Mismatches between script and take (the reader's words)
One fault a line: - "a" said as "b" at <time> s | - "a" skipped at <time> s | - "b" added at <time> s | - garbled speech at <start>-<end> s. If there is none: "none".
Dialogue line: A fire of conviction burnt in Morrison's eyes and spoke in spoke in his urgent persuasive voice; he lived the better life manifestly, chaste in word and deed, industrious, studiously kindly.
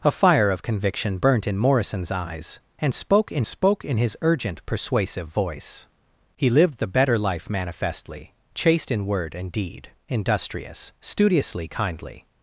none